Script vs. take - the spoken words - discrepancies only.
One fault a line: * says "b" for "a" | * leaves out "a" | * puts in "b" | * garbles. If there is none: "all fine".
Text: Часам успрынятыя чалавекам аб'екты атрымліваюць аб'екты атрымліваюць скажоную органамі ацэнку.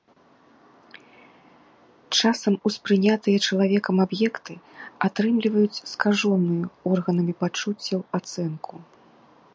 * leaves out "аб'екты атрымліваюць"
* puts in "пачуццяў"